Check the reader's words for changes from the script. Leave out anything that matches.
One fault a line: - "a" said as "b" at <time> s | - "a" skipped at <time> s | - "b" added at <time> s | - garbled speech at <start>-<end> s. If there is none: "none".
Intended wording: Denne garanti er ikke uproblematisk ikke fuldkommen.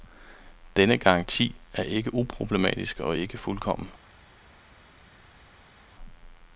- "og" added at 3.0 s